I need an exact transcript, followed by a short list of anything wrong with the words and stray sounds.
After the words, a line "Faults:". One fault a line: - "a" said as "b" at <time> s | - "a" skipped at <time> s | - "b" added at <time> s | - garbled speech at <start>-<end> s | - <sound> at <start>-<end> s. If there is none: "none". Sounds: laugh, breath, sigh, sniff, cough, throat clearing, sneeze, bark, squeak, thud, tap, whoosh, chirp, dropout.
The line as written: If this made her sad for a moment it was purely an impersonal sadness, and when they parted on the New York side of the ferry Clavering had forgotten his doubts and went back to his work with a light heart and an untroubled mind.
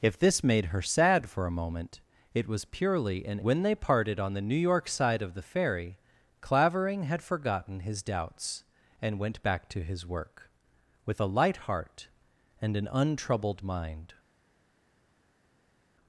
If this made her sad for a moment it was purely an when they parted on the New York side of the ferry Clavering had forgotten his doubts and went back to his work with a light heart and an untroubled mind.
Faults:
- "impersonal sadness and" skipped at 3.4 s